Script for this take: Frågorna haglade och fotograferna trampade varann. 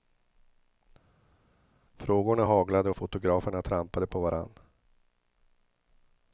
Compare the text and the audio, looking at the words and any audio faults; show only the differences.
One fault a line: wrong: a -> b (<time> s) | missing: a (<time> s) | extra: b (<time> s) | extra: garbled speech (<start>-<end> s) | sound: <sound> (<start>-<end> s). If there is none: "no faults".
extra: på (4.1 s)